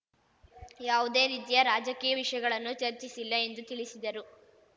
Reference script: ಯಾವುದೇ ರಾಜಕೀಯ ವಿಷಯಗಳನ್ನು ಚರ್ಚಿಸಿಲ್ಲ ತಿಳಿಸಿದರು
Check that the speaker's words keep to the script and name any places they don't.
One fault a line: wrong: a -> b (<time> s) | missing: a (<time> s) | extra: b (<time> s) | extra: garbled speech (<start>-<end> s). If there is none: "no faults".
extra: ರೀತಿಯ (1.3 s)
extra: ಎಂದು (3.4 s)